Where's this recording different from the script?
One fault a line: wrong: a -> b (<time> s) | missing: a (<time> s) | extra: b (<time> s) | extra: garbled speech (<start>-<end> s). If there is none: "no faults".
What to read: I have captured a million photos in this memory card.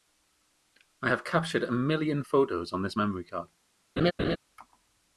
wrong: in -> on (2.7 s)